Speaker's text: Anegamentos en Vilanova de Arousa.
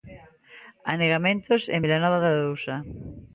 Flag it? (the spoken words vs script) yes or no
no